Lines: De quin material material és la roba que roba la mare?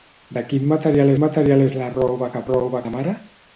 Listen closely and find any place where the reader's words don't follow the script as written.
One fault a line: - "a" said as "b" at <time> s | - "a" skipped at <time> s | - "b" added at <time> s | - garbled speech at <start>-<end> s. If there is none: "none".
none